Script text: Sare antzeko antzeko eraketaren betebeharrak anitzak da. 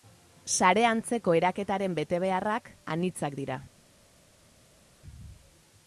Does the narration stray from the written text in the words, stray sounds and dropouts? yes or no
yes